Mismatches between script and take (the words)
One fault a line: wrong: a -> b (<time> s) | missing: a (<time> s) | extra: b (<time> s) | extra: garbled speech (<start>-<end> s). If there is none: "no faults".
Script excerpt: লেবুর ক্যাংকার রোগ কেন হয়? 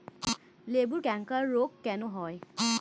no faults